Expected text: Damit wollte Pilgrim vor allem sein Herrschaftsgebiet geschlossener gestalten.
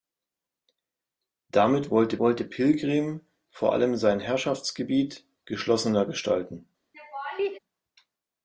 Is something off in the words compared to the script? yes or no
yes